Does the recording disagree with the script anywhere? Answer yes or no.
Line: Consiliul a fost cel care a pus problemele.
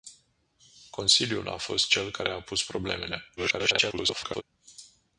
yes